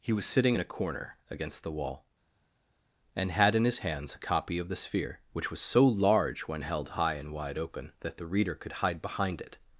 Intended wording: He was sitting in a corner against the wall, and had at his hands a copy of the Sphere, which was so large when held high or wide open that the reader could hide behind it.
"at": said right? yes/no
no